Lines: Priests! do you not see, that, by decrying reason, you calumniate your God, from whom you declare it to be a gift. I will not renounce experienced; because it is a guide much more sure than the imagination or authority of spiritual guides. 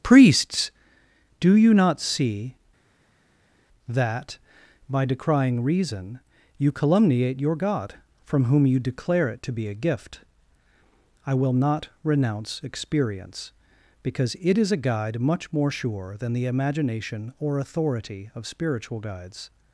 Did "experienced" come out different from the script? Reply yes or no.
yes